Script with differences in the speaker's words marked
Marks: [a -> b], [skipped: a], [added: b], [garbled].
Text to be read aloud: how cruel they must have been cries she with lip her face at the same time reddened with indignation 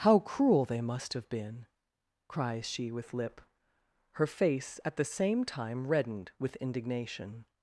how cruel they must have been cries she with lip her face at the same time reddened with indignation